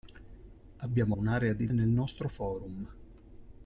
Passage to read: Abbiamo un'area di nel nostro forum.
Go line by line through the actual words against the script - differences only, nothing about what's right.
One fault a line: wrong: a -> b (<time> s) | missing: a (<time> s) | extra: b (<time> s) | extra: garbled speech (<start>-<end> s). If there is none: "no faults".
no faults